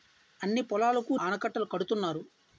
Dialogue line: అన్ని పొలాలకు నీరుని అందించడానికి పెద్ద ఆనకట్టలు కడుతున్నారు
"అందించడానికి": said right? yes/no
no